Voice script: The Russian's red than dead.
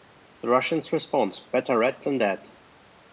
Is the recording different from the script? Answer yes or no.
yes